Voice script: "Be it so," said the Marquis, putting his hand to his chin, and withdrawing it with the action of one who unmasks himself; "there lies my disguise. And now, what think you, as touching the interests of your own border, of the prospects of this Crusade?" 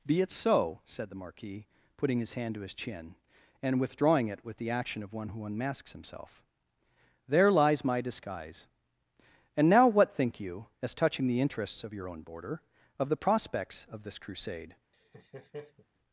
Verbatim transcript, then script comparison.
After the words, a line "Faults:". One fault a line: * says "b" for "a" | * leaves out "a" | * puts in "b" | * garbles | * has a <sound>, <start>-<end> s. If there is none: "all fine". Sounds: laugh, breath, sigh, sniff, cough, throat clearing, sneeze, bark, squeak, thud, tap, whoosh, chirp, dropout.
"Be it so," said the Marquis, putting his hand to his chin, and withdrawing it with the action of one who unmasks himself; "there lies my disguise. And now, what think you, as touching the interests of your own border, of the prospects of this Crusade?"
Faults:
* has a laugh, 14.9-15.9 s